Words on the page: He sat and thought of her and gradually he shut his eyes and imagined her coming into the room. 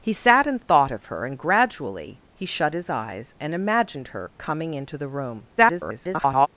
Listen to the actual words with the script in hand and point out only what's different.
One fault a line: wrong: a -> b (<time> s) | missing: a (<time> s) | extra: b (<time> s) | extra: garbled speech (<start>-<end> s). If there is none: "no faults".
extra: garbled speech (5.6-6.5 s)